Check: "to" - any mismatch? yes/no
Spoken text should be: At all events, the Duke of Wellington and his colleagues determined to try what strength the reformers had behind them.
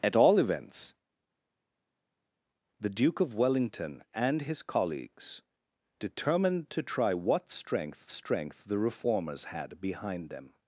no